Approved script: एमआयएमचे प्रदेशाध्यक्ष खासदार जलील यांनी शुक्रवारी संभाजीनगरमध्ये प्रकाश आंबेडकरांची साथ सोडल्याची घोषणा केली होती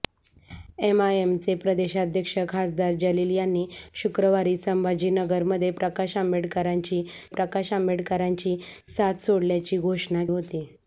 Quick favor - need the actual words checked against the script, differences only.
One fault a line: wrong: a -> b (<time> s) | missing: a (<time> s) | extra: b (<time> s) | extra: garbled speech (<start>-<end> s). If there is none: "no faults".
extra: प्रकाश आंबेडकरांची (7.3 s)
missing: केली (10.2 s)